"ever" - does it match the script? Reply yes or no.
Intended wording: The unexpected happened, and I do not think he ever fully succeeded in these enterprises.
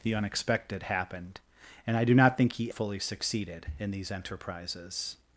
no